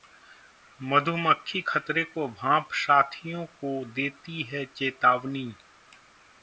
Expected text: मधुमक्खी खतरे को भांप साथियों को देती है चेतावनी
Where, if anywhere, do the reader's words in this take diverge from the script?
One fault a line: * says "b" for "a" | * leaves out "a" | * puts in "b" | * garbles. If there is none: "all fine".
all fine